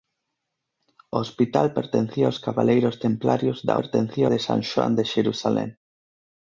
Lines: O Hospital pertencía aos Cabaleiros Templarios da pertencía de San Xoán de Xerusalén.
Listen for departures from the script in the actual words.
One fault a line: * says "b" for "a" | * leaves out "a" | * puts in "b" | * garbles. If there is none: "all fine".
all fine